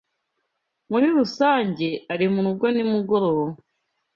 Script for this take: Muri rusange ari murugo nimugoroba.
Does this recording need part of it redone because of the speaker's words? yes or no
no